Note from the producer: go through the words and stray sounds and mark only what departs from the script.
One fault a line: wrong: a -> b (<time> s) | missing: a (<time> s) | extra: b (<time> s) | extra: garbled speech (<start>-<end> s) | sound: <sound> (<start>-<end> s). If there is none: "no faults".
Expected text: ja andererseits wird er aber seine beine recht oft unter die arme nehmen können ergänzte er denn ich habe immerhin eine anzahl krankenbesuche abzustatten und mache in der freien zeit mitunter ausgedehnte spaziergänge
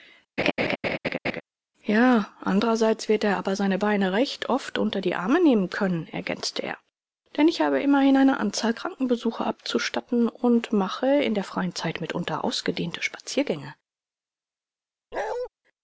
sound: laugh (0.4-1.4 s)
sound: bark (15.1-15.5 s)